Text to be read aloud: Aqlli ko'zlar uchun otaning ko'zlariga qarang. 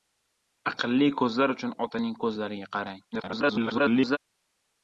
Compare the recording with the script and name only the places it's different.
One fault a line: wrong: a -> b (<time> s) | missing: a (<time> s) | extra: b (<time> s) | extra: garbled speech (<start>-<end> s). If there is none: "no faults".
extra: garbled speech (3.1-4.2 s)